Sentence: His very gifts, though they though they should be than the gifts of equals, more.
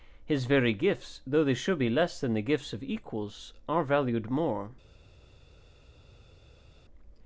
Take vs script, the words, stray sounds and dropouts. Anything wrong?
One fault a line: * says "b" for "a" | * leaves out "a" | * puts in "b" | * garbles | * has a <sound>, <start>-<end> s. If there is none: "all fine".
* leaves out "though they"
* puts in "less"
* puts in "are valued"